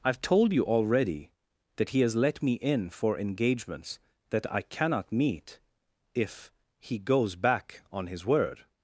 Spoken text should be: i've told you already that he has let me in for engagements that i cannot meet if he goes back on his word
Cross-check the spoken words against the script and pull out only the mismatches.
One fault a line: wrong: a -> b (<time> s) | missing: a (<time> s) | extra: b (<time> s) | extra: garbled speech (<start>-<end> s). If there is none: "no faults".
no faults